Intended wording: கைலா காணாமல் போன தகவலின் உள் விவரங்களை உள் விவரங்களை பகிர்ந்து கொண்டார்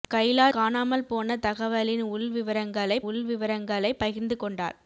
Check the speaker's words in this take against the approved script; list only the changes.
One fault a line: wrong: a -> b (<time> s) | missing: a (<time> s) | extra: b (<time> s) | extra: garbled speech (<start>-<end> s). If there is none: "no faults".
no faults